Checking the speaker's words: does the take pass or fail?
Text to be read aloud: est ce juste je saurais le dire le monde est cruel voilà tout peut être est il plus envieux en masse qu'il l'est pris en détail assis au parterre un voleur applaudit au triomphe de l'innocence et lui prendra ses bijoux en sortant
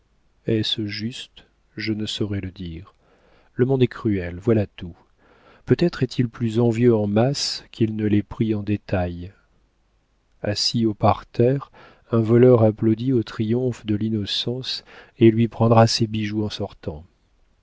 fail